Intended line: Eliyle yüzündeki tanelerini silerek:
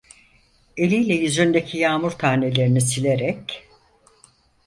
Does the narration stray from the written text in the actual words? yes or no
yes